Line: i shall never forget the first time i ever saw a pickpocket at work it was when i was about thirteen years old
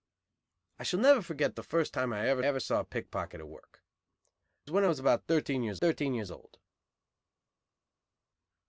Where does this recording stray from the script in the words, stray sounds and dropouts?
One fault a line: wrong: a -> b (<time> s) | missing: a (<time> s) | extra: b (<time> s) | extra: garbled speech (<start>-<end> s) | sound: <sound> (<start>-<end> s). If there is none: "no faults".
extra: ever (2.4 s)
missing: was (4.7 s)
extra: thirteen years (5.8 s)